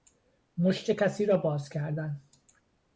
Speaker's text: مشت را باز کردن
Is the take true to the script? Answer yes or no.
no